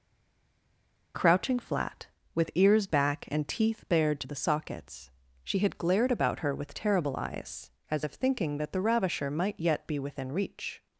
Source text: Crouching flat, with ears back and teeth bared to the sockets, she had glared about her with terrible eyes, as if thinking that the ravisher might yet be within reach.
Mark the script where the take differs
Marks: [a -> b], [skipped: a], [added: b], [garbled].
Crouching flat, with ears back and teeth bared to the sockets, she had glared about her with terrible eyes, as if thinking that the ravisher might yet be within reach.